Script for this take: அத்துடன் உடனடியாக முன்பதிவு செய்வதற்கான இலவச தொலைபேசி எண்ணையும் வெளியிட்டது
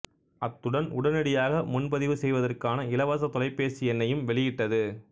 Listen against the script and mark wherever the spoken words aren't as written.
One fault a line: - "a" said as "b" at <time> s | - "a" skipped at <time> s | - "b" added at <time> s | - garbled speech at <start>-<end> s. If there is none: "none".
none